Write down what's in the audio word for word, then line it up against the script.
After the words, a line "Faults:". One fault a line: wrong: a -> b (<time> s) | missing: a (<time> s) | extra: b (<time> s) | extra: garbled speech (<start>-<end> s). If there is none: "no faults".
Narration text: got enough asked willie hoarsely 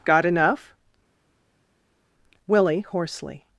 got enough willie hoarsely
Faults:
missing: asked (0.8 s)